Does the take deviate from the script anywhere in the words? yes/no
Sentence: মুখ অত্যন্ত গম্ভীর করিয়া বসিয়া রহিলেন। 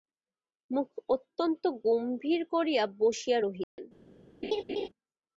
no